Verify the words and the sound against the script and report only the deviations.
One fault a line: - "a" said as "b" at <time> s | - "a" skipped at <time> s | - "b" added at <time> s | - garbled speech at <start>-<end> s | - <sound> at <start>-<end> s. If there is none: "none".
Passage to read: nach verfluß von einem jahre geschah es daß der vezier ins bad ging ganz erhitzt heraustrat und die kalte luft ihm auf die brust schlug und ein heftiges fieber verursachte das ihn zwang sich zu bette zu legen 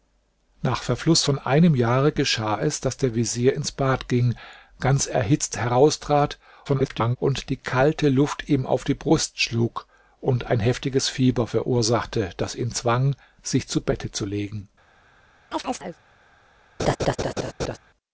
- garbled speech at 6.7-7.2 s
- chirp at 15.5-16.0 s
- laugh at 16.8-17.8 s